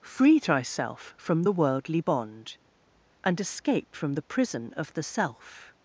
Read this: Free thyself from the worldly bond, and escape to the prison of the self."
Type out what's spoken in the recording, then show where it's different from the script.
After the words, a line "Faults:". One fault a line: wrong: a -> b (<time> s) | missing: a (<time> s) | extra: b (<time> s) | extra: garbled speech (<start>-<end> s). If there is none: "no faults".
Free thyself from the worldly bond, and escape from the prison of the self."
Faults:
wrong: to -> from (4.0 s)